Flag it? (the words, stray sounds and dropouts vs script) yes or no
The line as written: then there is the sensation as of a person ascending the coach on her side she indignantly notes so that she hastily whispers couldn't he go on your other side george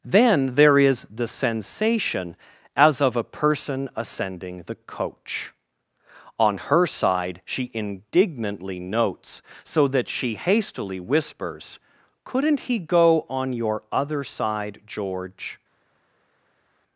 no